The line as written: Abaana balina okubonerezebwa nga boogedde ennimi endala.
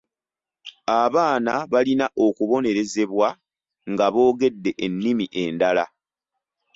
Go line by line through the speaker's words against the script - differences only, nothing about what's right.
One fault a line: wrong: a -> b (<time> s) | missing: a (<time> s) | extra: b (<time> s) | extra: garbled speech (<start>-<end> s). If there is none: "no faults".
no faults